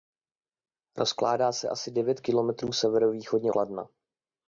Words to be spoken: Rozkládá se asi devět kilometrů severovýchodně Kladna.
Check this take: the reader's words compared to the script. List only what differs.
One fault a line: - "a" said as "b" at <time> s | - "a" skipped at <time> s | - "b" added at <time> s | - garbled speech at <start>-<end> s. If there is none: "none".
none